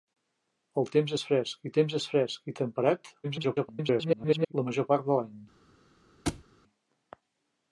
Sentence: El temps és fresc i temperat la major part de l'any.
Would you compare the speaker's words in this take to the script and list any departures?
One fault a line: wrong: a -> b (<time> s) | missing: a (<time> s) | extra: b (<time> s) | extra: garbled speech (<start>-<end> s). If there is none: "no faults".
extra: temps és fresc (1.8 s)
extra: garbled speech (3.2-4.5 s)